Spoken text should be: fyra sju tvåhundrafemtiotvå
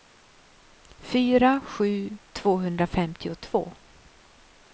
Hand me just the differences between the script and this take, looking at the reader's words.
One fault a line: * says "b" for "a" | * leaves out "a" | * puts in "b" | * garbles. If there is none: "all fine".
all fine